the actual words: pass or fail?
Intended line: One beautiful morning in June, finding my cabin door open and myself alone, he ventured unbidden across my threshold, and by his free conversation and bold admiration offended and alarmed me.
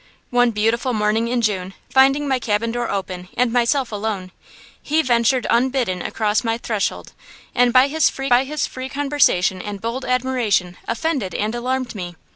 fail